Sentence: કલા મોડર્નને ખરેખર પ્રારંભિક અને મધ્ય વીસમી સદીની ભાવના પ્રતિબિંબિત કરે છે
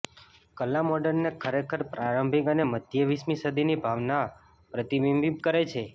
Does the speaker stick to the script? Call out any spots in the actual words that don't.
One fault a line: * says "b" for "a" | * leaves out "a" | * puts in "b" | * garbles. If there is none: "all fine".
all fine